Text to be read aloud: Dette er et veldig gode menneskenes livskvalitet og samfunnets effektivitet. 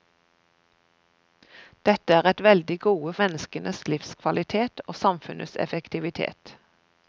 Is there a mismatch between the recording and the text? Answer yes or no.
no